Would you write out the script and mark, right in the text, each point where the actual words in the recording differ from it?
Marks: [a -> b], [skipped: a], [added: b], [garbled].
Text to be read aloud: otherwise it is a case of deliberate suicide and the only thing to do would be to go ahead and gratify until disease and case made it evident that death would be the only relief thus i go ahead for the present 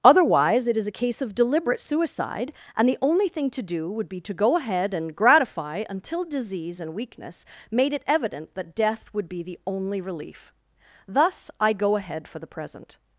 otherwise it is a case of deliberate suicide and the only thing to do would be to go ahead and gratify until disease and [case -> weakness] made it evident that death would be the only relief thus i go ahead for the present